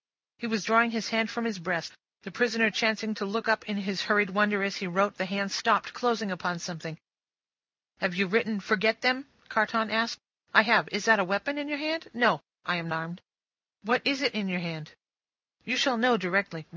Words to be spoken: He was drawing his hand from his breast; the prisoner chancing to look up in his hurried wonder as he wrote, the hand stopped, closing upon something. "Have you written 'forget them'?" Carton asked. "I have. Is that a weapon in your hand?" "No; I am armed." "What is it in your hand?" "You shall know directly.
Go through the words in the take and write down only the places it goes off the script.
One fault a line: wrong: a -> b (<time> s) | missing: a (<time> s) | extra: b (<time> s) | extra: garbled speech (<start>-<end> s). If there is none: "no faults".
no faults